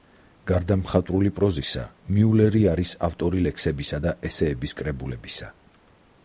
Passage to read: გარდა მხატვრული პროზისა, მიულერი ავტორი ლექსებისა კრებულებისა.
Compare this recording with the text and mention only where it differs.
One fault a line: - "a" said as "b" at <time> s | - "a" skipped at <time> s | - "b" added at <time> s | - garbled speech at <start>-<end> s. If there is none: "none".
- "არის" added at 2.7 s
- "და ესეების" added at 4.0 s